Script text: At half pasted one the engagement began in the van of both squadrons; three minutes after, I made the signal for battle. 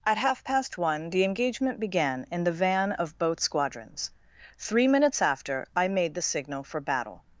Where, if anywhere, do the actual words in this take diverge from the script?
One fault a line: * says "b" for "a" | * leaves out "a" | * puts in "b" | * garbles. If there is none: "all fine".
* says "past" for "pasted"